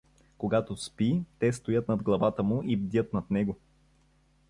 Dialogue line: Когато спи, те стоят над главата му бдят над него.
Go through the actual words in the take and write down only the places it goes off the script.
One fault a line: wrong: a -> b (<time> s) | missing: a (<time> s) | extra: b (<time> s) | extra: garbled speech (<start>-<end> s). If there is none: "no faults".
extra: и (2.6 s)